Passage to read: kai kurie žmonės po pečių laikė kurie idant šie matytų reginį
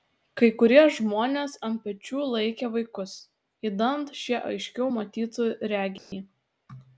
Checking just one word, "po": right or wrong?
wrong